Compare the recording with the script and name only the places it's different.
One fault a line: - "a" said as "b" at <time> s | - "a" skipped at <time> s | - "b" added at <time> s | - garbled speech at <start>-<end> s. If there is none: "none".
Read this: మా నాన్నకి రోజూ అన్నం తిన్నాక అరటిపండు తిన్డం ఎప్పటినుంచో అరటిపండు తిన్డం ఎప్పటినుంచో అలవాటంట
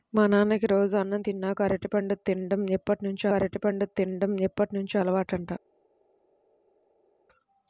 none